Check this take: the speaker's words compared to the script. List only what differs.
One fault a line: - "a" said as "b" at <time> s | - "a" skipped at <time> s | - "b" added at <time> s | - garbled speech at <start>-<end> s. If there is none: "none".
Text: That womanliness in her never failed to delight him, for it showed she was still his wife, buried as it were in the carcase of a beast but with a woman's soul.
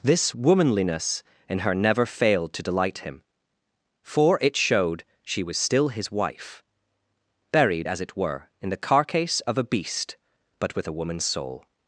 - "That" said as "This" at 0.0 s